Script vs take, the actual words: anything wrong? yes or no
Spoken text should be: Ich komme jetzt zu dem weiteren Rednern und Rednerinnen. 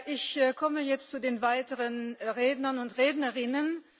yes